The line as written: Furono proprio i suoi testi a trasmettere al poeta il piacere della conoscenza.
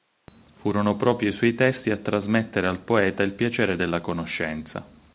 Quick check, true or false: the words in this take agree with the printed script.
true